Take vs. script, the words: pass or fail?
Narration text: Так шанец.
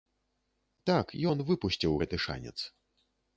fail